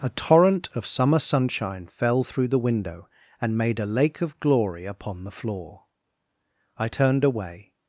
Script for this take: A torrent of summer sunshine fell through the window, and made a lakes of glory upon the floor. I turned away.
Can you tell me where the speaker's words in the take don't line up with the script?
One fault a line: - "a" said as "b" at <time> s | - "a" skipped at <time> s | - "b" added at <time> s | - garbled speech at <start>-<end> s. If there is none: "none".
- "lakes" said as "lake" at 3.9 s